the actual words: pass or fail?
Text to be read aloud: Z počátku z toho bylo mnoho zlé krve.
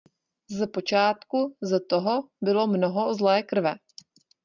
pass